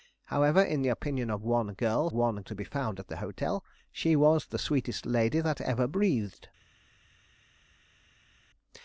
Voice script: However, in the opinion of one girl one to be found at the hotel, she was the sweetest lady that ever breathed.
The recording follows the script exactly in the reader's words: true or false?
true